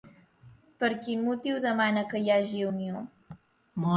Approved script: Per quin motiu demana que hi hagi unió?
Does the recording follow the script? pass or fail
pass